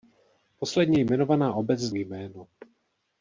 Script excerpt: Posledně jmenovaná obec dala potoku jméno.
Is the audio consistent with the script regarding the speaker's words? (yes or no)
no